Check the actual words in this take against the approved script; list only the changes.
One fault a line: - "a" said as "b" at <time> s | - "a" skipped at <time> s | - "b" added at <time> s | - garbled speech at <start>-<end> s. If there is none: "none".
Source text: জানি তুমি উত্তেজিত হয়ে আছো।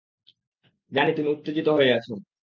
none